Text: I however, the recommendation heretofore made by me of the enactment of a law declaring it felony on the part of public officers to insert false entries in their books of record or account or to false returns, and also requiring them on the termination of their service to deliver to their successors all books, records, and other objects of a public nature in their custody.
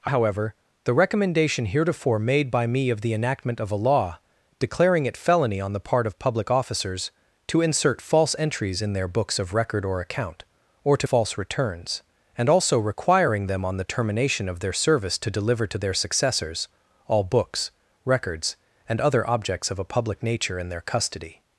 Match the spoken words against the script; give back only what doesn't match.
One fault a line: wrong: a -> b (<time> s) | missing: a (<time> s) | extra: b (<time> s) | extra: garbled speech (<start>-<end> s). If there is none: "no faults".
no faults